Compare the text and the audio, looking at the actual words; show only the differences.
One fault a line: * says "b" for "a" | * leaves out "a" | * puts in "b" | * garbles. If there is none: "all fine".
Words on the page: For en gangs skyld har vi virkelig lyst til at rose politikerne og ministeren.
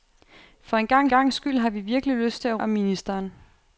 * puts in "gangs"
* leaves out "rose politikerne"